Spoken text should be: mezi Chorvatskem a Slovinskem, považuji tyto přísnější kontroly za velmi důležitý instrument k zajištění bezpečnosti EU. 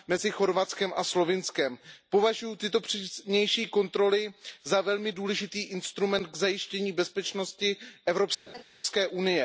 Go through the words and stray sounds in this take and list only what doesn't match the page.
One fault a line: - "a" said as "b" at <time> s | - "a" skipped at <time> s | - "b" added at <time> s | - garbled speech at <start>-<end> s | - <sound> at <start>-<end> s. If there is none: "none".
- laugh at 8.5-8.6 s